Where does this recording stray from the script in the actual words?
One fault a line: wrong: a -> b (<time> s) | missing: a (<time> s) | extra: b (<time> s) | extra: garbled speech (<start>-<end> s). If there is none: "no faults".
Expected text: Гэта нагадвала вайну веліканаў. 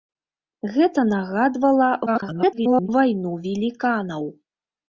extra: garbled speech (2.1-2.9 s)